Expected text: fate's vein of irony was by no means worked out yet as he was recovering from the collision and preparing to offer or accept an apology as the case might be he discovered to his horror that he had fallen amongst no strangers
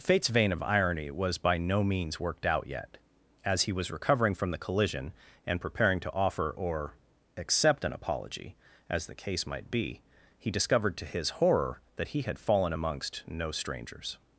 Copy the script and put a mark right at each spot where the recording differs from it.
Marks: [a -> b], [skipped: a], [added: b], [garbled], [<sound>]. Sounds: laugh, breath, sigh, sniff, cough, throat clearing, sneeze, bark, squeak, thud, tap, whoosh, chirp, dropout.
fate's vein of irony was by no means worked out yet as he was recovering from the collision and preparing to offer or accept an apology as the case might be he discovered to his horror that he had fallen amongst no strangers